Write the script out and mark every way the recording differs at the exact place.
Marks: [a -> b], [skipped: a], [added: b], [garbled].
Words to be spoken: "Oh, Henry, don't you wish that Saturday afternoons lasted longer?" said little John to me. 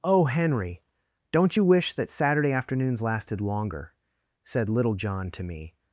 "Oh, Henry, don't you wish that Saturday afternoons lasted longer?" said little John to me.